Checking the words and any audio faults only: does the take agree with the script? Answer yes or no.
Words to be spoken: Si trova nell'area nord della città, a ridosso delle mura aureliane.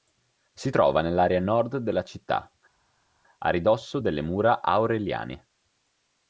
yes